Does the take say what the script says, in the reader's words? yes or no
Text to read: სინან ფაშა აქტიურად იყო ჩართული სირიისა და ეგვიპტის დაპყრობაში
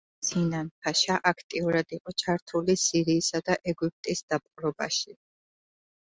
yes